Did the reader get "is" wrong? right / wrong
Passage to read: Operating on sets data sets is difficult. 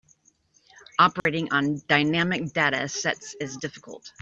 right